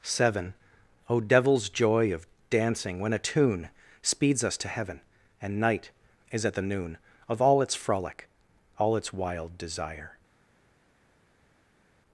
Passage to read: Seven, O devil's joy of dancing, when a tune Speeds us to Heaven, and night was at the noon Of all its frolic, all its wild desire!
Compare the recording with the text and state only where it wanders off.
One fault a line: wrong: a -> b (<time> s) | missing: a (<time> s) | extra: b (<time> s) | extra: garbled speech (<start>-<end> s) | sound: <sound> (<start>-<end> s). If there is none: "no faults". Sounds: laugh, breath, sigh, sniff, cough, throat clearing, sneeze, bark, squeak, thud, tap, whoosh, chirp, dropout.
wrong: was -> is (6.3 s)